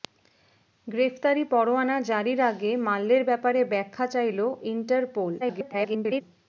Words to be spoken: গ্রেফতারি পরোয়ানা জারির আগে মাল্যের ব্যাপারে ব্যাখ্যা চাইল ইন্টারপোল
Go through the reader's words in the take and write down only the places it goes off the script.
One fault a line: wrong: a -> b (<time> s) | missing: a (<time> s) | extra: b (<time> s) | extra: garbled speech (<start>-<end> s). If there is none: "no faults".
extra: garbled speech (5.4-6.2 s)